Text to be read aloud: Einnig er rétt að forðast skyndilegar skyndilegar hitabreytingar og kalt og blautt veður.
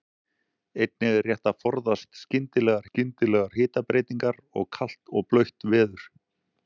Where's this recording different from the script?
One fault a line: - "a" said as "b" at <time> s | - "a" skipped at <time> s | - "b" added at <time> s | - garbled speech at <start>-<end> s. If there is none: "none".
none